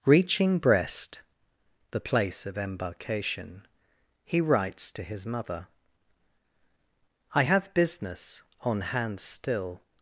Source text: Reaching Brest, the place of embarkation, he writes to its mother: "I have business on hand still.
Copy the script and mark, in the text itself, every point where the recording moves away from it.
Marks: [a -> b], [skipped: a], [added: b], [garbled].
Reaching Brest, the place of embarkation, he writes to [its -> his] mother: "I have business on hand still.